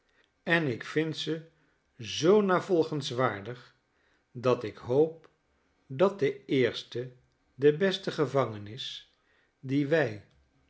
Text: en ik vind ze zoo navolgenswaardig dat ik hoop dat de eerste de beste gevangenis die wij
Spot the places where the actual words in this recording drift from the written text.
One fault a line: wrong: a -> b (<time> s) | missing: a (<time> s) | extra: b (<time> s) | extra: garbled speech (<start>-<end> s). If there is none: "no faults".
no faults